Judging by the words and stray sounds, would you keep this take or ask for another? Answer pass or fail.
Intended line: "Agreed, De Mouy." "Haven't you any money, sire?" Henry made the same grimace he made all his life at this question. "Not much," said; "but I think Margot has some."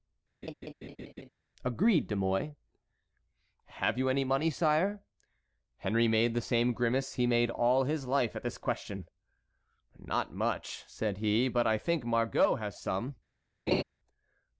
fail